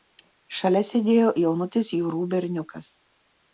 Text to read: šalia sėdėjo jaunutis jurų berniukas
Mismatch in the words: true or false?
false